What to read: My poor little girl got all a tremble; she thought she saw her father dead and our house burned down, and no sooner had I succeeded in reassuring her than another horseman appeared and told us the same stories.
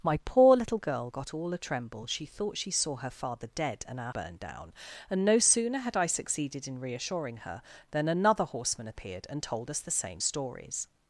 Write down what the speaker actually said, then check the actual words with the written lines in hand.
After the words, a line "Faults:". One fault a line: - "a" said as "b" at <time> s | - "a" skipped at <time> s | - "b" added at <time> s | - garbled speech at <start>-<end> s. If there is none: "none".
My poor little girl got all a tremble; she thought she saw her father dead and our burned down, and no sooner had I succeeded in reassuring her than another horseman appeared and told us the same stories.
Faults:
- "house" skipped at 4.1 s